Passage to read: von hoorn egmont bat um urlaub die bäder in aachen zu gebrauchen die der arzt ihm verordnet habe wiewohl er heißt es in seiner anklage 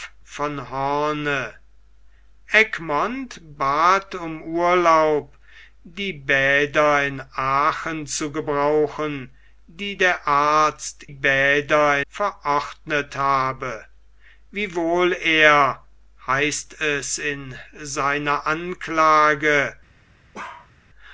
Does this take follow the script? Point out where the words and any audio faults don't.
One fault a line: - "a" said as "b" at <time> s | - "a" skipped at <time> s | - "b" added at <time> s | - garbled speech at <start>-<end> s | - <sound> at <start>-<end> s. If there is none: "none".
- "ihm" said as "bäder" at 11.1 s
- bark at 20.3-20.7 s